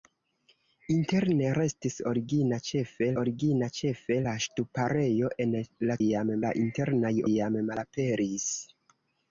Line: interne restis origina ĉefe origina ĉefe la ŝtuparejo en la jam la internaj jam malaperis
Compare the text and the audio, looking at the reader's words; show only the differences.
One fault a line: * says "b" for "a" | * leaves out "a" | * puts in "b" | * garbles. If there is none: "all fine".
all fine